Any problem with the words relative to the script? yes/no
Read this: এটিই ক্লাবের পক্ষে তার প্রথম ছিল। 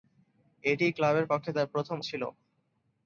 no